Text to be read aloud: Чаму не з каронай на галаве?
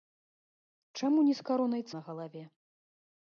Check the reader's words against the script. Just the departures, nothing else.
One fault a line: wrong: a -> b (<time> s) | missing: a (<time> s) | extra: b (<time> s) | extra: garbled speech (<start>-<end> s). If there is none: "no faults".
no faults